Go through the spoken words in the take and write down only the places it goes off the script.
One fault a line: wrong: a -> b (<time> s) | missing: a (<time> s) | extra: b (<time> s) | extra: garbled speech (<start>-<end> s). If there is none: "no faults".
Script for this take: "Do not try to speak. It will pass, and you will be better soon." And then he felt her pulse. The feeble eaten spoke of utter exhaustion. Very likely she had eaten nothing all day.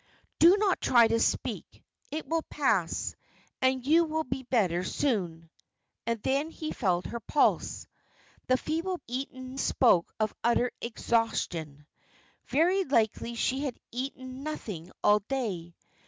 no faults